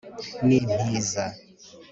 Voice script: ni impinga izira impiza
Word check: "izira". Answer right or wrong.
wrong